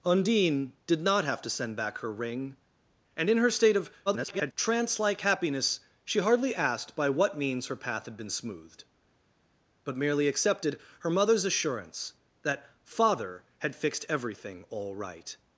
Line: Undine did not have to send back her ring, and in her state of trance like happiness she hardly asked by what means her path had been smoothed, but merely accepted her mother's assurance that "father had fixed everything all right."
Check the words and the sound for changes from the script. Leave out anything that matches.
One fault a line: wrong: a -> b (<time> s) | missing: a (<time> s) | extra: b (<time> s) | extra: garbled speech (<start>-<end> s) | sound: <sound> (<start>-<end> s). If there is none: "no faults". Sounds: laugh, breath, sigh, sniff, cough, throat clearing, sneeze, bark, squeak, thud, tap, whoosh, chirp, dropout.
extra: garbled speech (4.1-4.5 s)